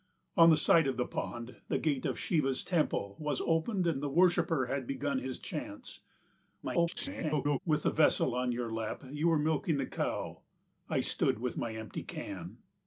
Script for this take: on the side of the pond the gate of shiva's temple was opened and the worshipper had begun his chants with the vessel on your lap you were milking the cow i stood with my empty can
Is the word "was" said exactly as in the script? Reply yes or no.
yes